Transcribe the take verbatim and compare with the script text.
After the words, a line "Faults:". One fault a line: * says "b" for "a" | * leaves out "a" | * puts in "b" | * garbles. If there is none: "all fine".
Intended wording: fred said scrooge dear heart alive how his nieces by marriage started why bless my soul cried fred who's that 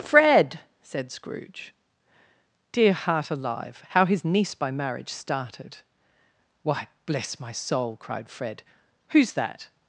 fred said scrooge dear heart alive how his niece by marriage started why bless my soul cried fred who's that
Faults:
* says "niece" for "nieces"